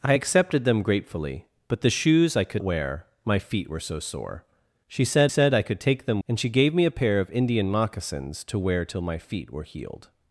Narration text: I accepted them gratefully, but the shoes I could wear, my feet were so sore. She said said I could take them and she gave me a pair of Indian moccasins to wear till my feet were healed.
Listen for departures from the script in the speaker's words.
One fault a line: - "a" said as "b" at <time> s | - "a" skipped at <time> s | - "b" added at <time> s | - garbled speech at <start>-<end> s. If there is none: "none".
none